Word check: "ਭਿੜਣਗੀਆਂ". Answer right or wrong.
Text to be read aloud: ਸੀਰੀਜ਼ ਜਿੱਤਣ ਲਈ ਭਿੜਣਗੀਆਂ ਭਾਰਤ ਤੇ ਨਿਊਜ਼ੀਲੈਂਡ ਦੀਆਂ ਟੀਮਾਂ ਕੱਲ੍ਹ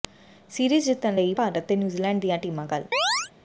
wrong